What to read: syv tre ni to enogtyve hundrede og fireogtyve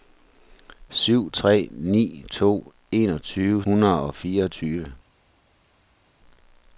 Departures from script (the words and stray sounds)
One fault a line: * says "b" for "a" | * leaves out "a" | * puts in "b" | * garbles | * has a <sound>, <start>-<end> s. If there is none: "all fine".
all fine